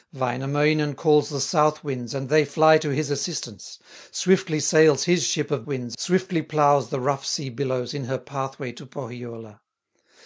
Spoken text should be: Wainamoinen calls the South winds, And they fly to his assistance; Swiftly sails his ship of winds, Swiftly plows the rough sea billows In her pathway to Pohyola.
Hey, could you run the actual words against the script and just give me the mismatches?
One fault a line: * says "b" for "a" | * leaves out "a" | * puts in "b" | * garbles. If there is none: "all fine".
all fine